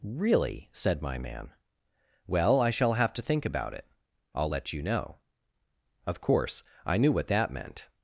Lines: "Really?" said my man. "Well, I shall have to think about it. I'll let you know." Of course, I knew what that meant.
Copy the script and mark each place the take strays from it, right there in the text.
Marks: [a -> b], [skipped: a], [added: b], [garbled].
"Really?" said my man. "Well, I shall have to think about it. I'll let you know." Of course, I knew what that meant.